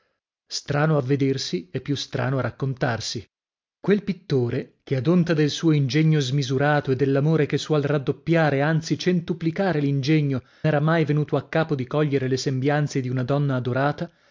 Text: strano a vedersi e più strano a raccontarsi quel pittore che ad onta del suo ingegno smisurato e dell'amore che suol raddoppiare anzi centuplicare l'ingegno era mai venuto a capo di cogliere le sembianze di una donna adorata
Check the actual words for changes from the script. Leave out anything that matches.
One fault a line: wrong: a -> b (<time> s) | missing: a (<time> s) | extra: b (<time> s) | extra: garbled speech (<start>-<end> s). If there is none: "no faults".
no faults